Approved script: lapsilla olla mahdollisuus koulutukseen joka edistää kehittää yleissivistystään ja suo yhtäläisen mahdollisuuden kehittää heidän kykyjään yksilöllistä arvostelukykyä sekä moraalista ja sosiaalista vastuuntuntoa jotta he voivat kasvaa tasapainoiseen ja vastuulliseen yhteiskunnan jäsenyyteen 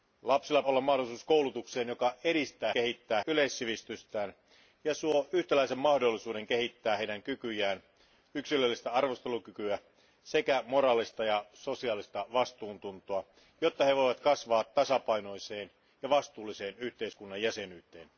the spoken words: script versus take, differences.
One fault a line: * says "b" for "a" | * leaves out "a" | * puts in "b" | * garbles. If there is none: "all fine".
all fine